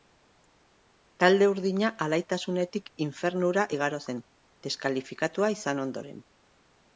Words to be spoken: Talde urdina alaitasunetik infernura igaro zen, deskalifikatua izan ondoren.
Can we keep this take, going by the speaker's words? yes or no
yes